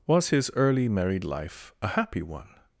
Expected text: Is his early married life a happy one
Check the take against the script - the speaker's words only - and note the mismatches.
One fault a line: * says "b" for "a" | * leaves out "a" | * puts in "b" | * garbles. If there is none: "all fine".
* says "Was" for "Is"